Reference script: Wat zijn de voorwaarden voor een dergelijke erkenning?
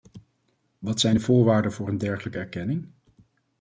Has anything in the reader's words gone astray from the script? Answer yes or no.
no